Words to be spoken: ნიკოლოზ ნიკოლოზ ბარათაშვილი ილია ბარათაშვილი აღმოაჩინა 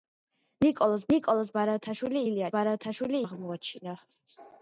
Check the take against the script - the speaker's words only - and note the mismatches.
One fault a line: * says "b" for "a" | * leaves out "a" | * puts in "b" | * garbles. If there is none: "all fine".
all fine